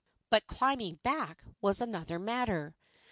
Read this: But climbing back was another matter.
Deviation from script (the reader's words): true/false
false